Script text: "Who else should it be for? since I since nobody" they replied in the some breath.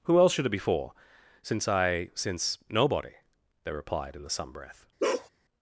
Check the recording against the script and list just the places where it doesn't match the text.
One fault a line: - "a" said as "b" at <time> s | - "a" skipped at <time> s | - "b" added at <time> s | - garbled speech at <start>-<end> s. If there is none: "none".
none